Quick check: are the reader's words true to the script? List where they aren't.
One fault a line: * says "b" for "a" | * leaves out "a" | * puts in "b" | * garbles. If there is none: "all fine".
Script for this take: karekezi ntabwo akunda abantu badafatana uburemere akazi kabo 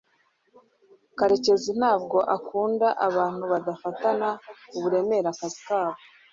all fine